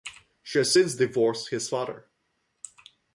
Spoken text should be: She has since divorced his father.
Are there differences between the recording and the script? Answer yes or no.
no